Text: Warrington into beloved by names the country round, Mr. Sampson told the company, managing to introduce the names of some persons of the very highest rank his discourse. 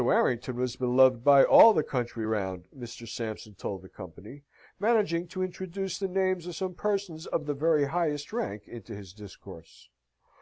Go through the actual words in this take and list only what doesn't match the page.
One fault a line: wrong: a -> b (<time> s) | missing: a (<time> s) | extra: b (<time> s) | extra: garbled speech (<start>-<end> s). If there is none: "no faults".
wrong: into -> was (0.6 s)
wrong: names -> all (1.4 s)
extra: into (8.7 s)